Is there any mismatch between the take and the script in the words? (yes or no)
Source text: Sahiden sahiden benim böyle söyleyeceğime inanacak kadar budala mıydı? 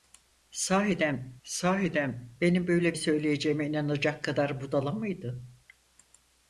no